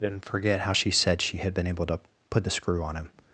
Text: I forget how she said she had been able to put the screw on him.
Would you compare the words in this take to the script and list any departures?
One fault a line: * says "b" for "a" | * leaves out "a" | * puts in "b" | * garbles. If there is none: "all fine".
* says "didn't" for "I"